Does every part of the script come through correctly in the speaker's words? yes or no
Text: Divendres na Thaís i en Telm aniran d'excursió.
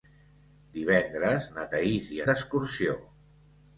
no